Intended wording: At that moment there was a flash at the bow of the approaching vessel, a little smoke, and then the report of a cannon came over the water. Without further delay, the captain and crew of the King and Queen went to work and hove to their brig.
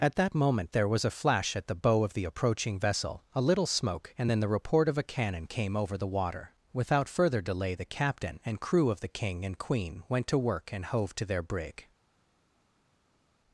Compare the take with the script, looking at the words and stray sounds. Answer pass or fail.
pass